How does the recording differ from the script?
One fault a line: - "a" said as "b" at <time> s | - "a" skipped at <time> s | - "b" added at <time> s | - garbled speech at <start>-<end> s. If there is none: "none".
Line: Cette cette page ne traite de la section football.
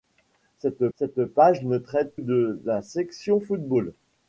none